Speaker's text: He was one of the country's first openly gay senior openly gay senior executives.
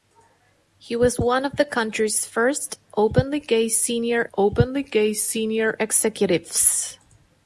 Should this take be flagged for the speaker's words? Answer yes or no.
no